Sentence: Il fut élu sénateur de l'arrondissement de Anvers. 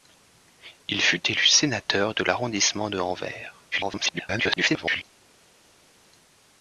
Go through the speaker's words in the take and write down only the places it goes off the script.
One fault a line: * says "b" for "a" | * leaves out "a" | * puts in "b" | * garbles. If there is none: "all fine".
* garbles